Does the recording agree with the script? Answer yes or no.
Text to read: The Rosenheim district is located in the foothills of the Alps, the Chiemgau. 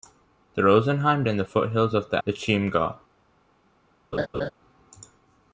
no